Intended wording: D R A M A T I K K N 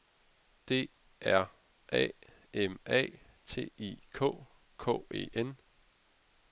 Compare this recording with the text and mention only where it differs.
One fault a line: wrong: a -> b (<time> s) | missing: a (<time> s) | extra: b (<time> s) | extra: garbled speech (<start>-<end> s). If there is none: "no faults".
extra: E (5.1 s)